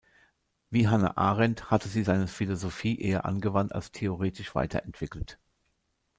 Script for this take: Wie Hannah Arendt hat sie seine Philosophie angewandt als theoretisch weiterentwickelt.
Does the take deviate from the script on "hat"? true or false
true